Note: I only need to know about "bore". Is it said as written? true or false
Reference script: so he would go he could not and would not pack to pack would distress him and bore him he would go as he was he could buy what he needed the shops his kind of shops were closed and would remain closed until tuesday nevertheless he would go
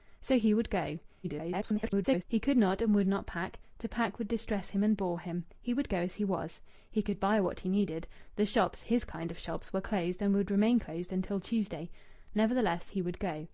true